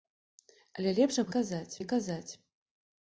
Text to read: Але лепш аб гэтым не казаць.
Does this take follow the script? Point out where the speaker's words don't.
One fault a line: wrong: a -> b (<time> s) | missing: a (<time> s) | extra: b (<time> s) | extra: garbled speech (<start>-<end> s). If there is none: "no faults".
wrong: гэтым -> казаць (1.4 s)